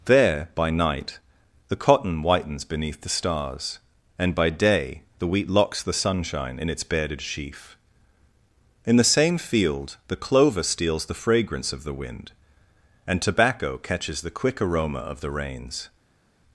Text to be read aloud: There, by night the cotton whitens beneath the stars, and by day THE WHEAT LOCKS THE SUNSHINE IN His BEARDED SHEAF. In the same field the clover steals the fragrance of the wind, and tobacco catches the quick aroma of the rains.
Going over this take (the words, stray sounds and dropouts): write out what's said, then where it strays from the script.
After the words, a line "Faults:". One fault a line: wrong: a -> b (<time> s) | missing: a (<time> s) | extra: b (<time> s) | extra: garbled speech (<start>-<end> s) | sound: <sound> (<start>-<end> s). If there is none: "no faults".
There, by night the cotton whitens beneath the stars, and by day THE WHEAT LOCKS THE SUNSHINE IN ITS BEARDED SHEAF. In the same field the clover steals the fragrance of the wind, and tobacco catches the quick aroma of the rains.
Faults:
wrong: His -> ITS (6.7 s)